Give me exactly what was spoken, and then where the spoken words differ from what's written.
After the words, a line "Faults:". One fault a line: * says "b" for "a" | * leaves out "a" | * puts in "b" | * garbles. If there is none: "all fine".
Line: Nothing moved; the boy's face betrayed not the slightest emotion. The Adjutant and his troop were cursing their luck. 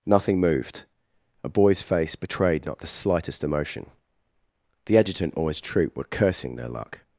Nothing moved; a boy's face betrayed not the slightest emotion. The Adjutant or his troop were cursing their luck.
Faults:
* says "a" for "the"
* says "or" for "and"